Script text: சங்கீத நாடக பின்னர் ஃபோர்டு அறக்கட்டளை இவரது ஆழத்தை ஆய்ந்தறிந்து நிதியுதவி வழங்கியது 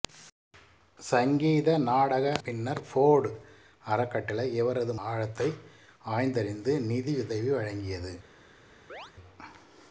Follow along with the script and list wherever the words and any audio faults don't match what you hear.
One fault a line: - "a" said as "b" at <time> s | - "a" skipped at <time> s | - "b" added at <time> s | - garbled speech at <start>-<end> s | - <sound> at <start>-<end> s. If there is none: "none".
- chirp at 8.9-9.1 s